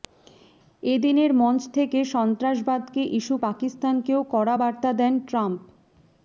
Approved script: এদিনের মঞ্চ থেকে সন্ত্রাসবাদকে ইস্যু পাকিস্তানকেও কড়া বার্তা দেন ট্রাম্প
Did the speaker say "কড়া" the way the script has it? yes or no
yes